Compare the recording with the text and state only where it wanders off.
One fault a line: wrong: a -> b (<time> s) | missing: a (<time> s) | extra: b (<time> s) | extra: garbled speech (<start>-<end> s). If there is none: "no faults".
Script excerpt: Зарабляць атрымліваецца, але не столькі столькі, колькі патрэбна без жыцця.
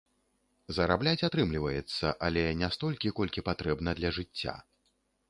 missing: столькі (3.1 s)
wrong: без -> для (4.0 s)